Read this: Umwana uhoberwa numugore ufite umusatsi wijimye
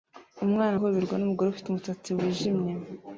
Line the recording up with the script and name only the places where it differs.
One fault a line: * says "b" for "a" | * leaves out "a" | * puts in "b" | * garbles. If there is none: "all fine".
all fine